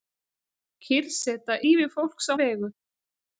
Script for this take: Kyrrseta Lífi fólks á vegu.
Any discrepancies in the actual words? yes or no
no